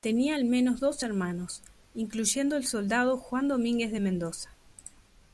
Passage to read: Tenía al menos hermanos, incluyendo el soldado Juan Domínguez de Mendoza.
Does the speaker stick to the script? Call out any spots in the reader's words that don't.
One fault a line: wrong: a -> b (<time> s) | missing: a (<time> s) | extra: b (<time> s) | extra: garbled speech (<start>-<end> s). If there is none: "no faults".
extra: dos (0.8 s)